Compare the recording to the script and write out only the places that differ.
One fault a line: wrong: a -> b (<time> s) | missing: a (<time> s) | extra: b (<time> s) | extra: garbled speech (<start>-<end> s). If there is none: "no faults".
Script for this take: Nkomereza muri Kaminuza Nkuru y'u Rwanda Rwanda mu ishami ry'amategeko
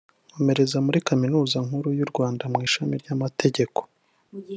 missing: Rwanda (2.4 s)